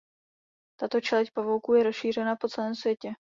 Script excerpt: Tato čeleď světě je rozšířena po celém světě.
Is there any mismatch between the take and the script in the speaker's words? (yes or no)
yes